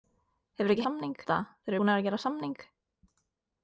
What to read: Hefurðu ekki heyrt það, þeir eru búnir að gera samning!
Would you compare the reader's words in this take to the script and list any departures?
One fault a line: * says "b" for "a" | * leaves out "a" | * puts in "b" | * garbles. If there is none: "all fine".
* says "samning" for "heyrt"
* leaves out "eru"